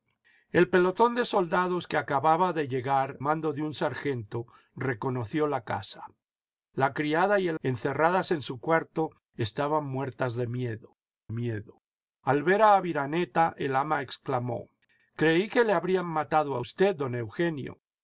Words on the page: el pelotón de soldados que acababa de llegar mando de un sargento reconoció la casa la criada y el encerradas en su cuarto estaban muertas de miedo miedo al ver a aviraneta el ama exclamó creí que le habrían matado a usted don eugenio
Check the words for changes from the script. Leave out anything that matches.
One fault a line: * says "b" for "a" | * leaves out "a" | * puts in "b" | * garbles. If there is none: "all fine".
all fine